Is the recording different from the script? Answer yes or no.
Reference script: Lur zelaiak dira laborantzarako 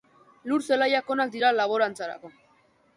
yes